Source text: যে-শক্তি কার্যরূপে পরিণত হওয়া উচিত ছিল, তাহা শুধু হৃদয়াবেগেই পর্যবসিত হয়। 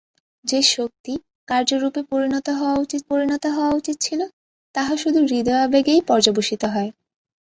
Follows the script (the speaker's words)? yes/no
no